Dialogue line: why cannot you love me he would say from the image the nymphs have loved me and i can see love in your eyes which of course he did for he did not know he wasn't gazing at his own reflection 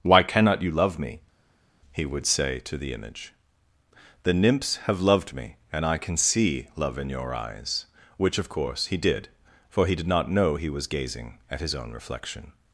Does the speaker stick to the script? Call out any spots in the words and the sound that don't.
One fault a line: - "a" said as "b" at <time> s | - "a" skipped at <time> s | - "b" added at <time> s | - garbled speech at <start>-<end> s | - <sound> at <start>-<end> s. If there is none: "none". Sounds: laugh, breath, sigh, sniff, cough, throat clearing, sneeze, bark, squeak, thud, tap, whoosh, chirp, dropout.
- "from" said as "to" at 2.6 s
- "wasn't" said as "was" at 10.7 s